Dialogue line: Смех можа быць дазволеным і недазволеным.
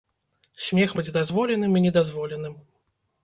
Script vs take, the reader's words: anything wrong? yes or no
yes